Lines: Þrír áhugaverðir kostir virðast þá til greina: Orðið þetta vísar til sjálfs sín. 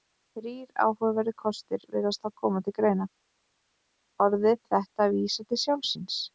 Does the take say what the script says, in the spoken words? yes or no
no